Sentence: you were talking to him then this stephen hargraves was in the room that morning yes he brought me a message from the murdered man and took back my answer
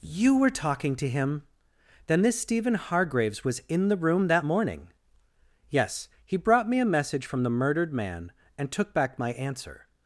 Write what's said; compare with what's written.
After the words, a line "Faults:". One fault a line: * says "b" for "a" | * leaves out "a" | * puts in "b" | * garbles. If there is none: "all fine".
you were talking to him then this stephen hargraves was in the room that morning yes he brought me a message from the murdered man and took back my answer
Faults:
all fine